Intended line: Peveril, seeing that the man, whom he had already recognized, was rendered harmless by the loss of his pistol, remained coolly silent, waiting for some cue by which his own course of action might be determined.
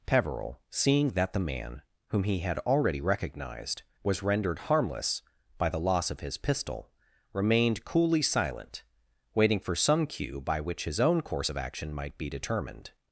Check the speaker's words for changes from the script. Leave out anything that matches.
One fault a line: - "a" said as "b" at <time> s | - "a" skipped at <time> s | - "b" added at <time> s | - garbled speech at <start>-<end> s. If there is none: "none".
none